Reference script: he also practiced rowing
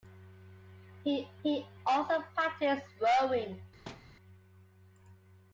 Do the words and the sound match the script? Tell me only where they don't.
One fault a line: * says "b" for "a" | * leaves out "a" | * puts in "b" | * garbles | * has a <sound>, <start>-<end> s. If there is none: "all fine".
* puts in "he"
* has a thud, 3.9-4.1 s